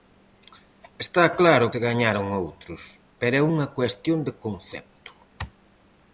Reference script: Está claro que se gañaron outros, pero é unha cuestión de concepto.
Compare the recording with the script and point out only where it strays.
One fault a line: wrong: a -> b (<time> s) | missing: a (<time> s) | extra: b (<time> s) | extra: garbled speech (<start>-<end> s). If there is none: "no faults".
missing: que (1.6 s)